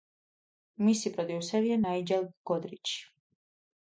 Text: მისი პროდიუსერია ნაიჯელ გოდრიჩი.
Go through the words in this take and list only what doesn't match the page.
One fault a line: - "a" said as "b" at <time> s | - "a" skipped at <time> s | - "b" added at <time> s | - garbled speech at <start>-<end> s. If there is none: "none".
none